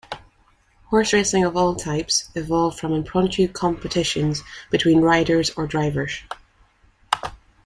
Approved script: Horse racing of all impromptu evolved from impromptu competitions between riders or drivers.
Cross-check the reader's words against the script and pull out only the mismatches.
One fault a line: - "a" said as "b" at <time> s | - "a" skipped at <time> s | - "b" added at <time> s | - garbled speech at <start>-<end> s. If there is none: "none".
- "impromptu" said as "types" at 1.8 s